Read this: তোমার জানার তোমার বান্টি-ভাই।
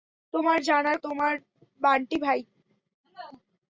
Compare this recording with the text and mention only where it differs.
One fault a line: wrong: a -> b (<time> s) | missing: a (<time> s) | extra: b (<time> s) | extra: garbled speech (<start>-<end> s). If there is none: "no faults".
no faults